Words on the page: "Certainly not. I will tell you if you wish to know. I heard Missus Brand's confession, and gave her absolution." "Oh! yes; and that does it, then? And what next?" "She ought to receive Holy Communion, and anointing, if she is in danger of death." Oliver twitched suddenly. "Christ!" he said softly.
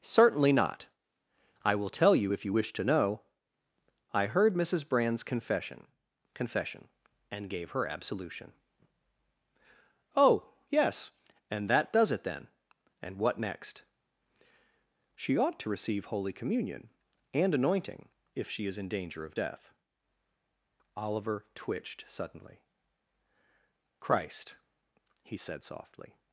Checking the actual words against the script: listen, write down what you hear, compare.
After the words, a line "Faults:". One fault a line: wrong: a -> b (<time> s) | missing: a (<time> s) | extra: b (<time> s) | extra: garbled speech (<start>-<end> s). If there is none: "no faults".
"Certainly not. I will tell you if you wish to know. I heard Missus Brand's confession confession, and gave her absolution." "Oh! yes; and that does it, then? And what next?" "She ought to receive Holy Communion, and anointing, if she is in danger of death." Oliver twitched suddenly. "Christ!" he said softly.
Faults:
extra: confession (6.3 s)